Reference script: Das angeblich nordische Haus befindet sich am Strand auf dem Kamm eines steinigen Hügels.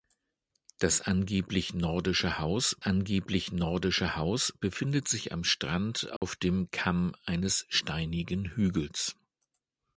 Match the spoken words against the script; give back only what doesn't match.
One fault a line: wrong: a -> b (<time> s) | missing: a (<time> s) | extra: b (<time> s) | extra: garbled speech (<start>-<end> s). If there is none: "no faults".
extra: angeblich nordische Haus (2.8 s)